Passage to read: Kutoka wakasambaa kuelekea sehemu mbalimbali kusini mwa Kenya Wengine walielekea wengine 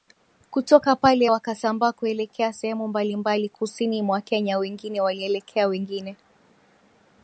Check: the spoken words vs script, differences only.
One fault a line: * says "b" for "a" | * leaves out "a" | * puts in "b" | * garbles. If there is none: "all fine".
* puts in "pale"